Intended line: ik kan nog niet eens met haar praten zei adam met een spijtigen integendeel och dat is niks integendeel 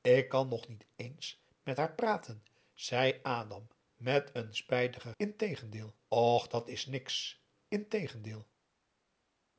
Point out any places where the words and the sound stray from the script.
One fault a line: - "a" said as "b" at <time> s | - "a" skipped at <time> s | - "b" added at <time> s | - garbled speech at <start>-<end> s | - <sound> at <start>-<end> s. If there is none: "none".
none